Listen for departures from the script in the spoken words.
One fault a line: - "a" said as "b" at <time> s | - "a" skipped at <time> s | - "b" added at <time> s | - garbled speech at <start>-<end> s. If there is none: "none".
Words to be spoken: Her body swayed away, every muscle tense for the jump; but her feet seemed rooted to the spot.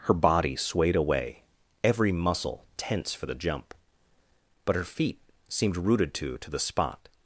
- "to" added at 6.4 s